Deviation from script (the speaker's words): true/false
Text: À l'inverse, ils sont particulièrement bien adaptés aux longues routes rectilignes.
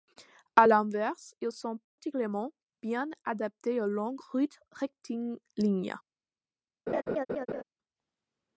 false